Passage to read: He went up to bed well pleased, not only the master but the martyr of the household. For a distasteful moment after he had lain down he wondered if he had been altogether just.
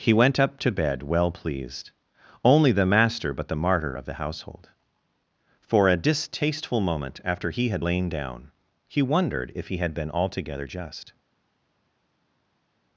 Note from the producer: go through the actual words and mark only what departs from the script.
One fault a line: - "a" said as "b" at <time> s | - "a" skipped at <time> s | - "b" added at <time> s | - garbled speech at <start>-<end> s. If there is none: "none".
- "not" skipped at 1.9 s